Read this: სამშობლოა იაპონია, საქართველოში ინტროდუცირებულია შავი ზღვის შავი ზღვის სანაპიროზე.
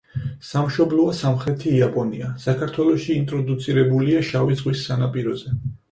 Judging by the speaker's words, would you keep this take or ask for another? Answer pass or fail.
fail